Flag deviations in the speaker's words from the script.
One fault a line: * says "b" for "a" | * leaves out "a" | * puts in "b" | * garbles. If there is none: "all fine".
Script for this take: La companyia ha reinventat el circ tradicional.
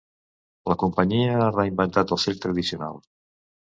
all fine